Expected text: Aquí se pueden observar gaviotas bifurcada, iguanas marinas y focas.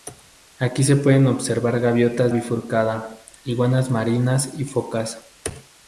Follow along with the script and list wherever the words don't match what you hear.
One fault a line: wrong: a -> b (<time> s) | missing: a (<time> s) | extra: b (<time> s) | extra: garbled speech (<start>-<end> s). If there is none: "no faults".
no faults